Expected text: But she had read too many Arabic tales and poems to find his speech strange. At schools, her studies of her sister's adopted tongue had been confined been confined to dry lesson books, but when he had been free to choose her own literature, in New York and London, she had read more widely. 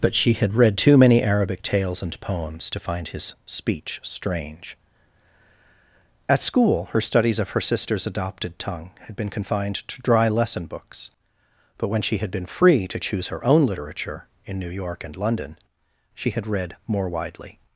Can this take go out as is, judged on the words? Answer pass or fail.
fail